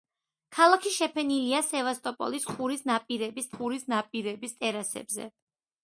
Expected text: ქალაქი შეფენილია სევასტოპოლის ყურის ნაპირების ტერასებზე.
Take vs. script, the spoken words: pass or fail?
fail